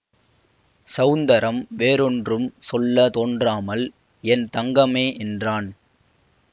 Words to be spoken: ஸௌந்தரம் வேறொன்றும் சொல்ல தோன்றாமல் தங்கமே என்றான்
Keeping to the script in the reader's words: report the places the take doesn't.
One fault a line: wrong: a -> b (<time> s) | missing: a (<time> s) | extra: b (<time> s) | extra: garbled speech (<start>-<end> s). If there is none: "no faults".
extra: என் (4.2 s)